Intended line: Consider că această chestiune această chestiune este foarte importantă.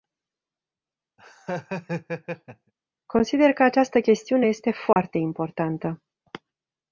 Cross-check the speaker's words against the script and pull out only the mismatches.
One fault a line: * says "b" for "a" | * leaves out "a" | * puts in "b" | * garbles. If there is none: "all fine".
* leaves out "această chestiune"